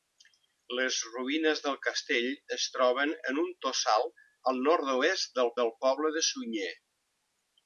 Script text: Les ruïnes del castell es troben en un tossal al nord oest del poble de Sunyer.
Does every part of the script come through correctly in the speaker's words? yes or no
no